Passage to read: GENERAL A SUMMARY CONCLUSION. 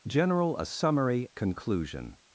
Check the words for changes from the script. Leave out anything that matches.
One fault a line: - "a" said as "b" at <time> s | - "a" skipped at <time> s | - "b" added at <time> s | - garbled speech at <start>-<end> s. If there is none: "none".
none